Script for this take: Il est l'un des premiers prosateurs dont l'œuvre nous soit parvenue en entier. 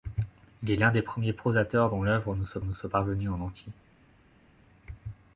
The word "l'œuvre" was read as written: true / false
true